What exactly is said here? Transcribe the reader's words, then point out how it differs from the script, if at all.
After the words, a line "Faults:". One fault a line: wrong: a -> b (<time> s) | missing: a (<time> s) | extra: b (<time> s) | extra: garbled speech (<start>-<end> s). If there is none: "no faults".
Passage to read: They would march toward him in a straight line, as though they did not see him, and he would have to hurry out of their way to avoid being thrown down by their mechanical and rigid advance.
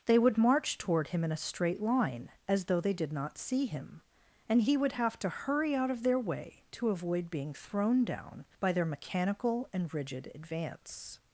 They would march toward him in a straight line, as though they did not see him, and he would have to hurry out of their way to avoid being thrown down by their mechanical and rigid advance.
Faults:
no faults